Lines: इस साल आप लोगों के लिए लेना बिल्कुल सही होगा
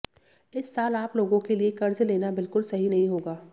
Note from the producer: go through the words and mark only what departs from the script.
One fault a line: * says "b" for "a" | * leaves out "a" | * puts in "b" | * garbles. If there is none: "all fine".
* puts in "कर्ज"
* puts in "नहीं"